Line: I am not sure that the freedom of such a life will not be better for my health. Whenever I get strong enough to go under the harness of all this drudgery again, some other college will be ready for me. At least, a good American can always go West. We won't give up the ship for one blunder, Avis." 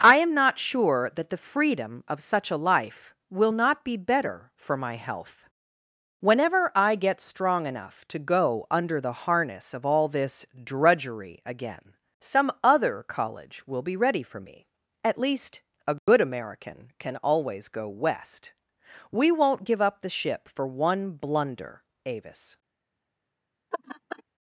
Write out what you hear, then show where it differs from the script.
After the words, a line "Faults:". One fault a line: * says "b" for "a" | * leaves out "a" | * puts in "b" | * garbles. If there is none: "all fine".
I am not sure that the freedom of such a life will not be better for my health. Whenever I get strong enough to go under the harness of all this drudgery again, some other college will be ready for me. At least, a good American can always go West. We won't give up the ship for one blunder, Avis."
Faults:
all fine